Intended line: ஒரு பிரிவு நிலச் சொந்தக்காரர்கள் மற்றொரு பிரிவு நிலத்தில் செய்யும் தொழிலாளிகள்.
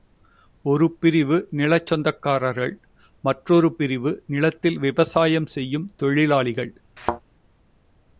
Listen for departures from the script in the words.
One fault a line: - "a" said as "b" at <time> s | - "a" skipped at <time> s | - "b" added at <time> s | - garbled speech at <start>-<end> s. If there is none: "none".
- "விவசாயம்" added at 4.8 s